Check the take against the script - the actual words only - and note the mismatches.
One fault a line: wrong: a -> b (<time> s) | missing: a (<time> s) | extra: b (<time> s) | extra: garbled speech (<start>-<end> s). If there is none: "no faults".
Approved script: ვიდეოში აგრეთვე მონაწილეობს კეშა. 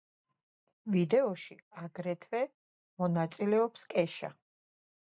no faults